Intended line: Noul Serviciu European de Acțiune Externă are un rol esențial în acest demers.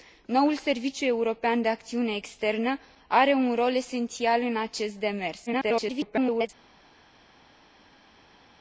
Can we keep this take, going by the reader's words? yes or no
no